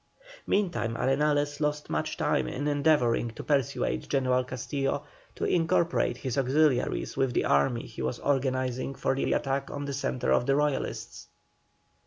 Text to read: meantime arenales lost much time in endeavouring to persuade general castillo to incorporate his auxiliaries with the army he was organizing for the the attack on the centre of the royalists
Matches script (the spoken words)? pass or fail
pass